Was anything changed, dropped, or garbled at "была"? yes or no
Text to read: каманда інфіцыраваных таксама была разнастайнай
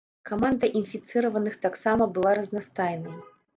no